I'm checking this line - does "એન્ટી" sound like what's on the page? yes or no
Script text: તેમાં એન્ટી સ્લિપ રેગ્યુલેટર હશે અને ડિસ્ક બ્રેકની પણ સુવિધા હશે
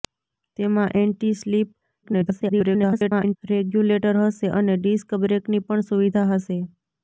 yes